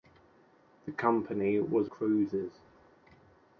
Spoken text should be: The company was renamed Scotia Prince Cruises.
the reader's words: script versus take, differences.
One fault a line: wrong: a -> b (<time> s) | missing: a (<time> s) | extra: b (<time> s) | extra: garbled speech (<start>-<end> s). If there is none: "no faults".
missing: renamed Scotia Prince (1.9 s)